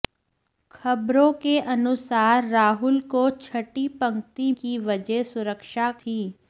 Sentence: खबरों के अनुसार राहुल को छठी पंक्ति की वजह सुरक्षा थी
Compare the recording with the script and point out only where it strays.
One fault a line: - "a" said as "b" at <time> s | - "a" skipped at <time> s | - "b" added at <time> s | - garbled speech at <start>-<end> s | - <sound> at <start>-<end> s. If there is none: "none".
none